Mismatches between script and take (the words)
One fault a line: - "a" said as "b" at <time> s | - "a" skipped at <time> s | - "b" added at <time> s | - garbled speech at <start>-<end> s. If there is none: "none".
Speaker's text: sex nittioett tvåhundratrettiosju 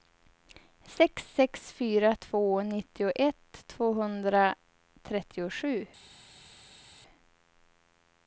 - "sex fyra två" added at 1.3 s